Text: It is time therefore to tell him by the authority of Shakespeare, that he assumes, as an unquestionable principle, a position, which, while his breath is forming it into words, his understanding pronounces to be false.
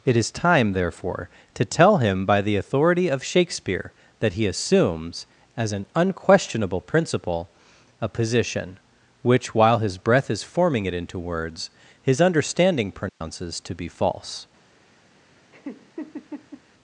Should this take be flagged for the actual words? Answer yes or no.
no